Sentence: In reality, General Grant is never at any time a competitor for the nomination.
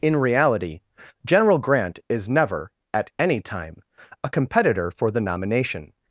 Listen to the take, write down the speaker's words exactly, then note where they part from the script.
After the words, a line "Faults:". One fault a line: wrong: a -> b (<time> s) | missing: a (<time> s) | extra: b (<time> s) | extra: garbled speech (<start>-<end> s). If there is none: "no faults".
In reality, General Grant is never at any time a competitor for the nomination.
Faults:
no faults